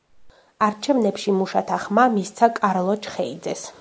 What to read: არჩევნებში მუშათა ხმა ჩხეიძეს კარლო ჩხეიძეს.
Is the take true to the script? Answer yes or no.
no